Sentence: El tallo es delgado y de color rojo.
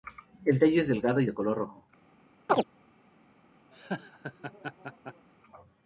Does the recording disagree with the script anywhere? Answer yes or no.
no